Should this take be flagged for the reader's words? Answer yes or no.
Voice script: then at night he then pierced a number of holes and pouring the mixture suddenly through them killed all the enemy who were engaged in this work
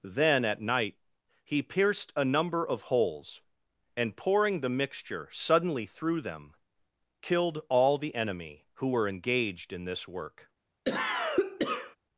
yes